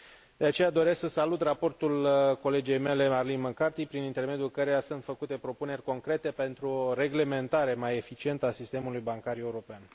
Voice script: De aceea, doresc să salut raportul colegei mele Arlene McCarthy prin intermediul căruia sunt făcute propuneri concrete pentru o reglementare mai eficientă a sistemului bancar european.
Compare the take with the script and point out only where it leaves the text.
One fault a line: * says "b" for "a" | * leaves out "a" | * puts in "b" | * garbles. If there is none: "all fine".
all fine